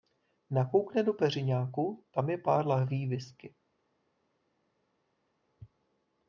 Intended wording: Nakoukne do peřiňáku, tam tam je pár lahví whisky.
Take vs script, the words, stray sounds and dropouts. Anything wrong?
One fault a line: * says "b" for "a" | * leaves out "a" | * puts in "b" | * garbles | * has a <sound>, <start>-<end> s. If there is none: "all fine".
* leaves out "tam"